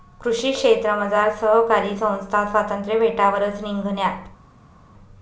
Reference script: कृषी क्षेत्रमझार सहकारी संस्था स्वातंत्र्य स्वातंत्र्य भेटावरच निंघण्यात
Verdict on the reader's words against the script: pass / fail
fail